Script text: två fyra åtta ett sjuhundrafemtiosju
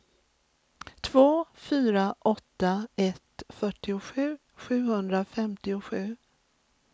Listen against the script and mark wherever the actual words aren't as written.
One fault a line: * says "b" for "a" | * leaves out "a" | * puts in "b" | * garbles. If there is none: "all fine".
* puts in "fyrtiosju"